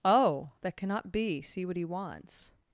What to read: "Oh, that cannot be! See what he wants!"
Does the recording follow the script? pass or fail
pass